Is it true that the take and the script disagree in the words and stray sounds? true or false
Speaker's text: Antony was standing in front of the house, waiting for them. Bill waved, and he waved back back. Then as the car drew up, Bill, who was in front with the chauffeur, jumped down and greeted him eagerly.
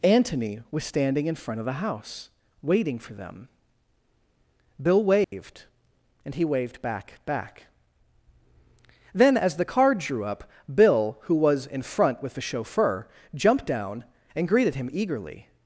true